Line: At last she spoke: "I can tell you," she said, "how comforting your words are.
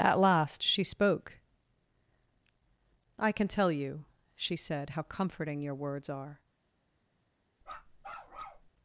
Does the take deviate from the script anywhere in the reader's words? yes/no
no